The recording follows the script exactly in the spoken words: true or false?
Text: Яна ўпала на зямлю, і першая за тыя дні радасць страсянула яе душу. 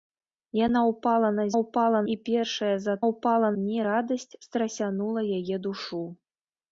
false